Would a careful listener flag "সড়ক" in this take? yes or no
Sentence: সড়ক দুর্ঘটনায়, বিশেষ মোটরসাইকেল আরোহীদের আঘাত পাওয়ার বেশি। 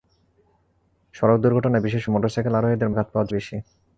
no